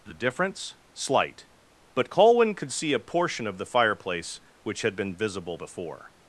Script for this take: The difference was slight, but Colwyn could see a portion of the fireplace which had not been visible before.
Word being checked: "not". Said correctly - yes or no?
no